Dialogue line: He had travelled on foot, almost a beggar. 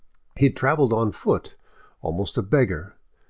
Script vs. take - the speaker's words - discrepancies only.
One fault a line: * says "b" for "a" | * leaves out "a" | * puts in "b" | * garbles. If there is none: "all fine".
all fine